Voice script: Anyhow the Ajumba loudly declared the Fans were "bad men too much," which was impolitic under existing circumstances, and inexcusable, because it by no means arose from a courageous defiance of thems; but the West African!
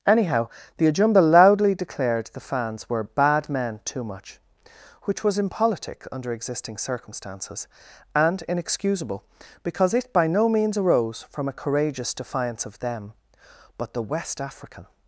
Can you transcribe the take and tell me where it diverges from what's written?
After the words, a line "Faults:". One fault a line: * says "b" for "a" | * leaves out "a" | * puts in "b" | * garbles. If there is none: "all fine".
Anyhow the Ajumba loudly declared the Fans were "bad men too much," which was impolitic under existing circumstances, and inexcusable, because it by no means arose from a courageous defiance of them; but the West African!
Faults:
* says "them" for "thems"